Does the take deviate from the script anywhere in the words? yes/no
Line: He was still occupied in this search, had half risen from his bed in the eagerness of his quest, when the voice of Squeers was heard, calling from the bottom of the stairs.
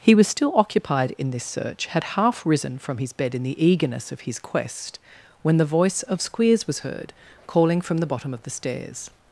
no